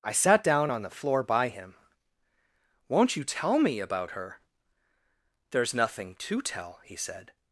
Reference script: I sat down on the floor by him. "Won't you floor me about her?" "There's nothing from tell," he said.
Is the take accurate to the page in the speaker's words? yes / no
no